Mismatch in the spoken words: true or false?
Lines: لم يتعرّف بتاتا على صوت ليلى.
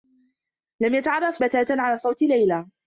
false